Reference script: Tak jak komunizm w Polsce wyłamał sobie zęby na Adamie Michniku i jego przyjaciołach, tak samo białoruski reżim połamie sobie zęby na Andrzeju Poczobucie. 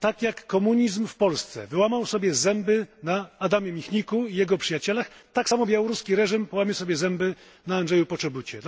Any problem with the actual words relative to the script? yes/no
no